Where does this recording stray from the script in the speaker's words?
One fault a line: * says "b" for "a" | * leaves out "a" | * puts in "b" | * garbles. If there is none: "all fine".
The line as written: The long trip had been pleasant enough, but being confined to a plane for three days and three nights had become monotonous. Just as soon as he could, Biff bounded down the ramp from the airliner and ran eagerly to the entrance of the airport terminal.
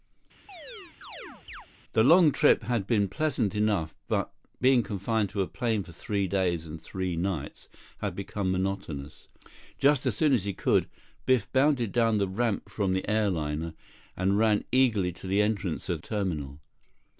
* leaves out "the airport"